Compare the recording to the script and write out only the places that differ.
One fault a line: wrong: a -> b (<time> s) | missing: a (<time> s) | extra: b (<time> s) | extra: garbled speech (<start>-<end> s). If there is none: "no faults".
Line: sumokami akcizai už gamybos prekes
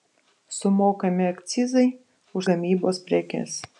no faults